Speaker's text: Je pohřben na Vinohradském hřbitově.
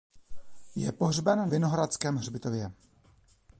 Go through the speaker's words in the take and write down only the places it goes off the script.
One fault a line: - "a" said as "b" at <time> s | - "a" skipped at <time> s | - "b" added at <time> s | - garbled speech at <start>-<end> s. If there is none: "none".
- "na" skipped at 1.5 s